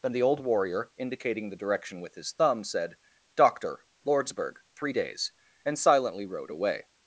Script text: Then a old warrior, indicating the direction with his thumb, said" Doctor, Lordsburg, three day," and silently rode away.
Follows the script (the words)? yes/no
no